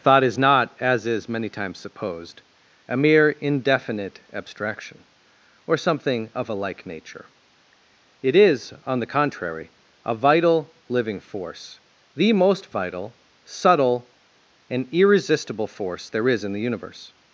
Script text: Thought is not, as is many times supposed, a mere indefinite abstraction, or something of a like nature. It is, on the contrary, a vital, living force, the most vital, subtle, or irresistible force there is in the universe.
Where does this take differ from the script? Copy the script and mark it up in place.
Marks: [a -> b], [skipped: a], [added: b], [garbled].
Thought is not, as is many times supposed, a mere indefinite abstraction, or something of a like nature. It is, on the contrary, a vital, living force, the most vital, subtle, [or -> and] irresistible force there is in the universe.